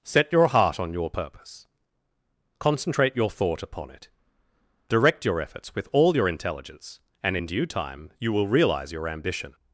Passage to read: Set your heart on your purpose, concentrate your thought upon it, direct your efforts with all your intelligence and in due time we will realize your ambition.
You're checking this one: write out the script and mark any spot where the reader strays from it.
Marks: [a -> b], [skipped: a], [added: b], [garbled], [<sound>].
Set your heart on your purpose, concentrate your thought upon it, direct your efforts with all your intelligence and in due time [we -> you] will realize your ambition.